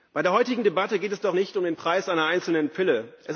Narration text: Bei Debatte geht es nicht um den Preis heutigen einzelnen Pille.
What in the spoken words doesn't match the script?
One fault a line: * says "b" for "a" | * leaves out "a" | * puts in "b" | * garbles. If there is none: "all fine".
* puts in "der heutigen"
* puts in "doch"
* says "einer" for "heutigen"